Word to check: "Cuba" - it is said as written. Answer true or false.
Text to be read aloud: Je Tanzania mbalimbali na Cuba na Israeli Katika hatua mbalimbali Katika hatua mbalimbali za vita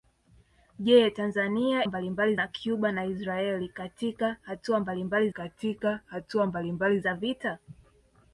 true